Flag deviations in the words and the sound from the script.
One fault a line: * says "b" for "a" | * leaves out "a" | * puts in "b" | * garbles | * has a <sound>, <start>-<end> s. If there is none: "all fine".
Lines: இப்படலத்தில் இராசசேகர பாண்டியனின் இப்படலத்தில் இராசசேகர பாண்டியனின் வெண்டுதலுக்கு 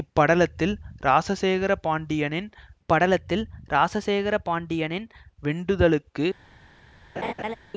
* has a laugh, 7.2-7.5 s